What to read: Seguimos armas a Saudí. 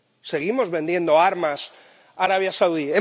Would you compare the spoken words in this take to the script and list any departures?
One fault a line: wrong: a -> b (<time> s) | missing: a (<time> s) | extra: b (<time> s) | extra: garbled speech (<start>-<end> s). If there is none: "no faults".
extra: vendiendo (0.7 s)
extra: Arabia (2.2 s)